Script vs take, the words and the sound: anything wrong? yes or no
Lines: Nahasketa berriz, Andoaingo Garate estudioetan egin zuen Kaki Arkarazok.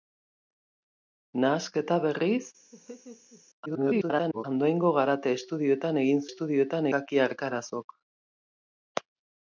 yes